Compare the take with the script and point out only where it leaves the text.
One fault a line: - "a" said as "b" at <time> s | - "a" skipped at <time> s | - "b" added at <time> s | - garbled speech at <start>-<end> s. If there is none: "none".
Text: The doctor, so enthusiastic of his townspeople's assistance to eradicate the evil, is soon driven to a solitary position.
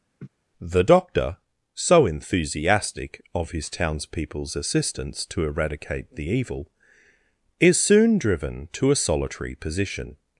none